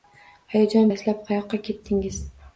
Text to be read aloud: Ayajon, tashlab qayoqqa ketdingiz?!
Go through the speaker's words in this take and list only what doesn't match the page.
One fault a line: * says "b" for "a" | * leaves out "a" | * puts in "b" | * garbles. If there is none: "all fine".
all fine